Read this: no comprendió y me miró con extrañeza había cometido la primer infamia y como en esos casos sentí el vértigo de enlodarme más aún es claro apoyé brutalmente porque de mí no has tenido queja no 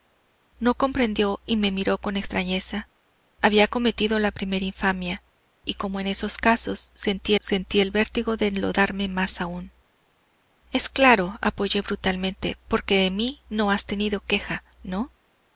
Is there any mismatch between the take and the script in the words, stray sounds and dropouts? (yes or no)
yes